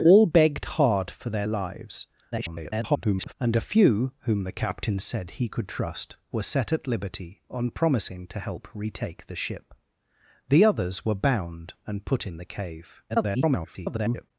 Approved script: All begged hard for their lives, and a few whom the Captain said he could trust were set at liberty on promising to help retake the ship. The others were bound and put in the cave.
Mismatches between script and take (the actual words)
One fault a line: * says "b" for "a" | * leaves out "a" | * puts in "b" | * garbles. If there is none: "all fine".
* garbles
* garbles